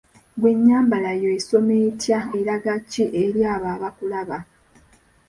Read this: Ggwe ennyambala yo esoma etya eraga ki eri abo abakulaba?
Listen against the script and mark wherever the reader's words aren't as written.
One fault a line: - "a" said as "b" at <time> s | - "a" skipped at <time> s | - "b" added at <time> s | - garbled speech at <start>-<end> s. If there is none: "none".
none